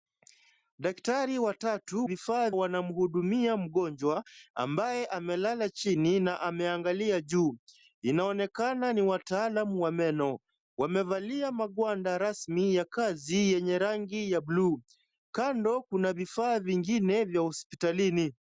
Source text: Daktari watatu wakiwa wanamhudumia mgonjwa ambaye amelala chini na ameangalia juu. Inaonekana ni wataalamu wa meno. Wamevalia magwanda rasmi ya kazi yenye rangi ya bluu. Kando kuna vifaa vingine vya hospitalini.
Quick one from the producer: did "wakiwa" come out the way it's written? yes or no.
no